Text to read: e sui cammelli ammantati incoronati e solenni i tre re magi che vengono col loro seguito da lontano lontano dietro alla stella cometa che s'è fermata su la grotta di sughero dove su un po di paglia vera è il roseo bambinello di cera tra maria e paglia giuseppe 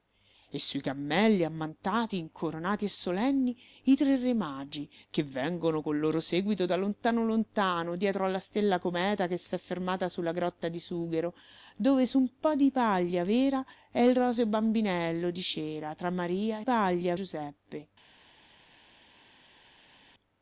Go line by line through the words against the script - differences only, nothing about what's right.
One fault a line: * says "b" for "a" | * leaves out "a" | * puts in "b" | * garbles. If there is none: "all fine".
all fine